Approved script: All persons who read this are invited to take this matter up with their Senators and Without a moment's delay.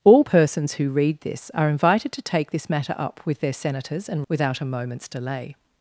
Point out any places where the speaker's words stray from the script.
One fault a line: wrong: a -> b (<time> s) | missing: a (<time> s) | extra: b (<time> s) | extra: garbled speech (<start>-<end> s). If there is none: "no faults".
no faults